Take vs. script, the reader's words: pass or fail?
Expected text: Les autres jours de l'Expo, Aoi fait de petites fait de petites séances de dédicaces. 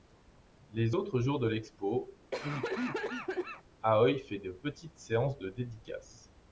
fail